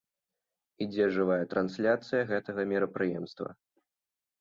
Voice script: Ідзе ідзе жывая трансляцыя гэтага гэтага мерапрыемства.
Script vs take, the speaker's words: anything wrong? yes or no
yes